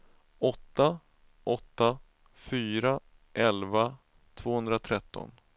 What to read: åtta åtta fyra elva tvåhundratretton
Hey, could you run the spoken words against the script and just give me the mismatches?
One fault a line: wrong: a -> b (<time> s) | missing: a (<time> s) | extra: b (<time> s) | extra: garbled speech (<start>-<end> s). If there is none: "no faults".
no faults